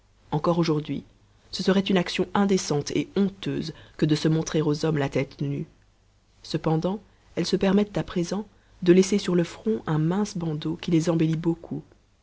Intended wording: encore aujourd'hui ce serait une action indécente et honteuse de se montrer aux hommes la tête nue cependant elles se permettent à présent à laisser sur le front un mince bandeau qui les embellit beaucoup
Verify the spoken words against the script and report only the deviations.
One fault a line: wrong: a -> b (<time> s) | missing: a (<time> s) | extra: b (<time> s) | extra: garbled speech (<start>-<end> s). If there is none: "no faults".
extra: que (4.0 s)
wrong: à -> de (8.8 s)